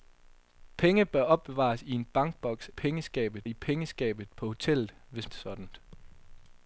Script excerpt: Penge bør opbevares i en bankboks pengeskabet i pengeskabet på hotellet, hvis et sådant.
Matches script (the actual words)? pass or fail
pass